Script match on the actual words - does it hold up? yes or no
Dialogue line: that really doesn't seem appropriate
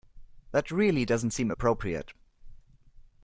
yes